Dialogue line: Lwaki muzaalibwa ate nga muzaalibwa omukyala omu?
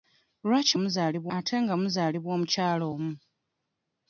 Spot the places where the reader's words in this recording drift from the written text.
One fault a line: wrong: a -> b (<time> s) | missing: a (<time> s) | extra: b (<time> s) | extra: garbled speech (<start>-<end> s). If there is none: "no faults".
no faults